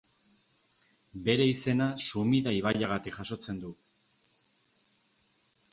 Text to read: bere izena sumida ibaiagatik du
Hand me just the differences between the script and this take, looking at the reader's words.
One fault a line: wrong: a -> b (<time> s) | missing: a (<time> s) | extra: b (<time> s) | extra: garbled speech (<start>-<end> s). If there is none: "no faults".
extra: jasotzen (3.2 s)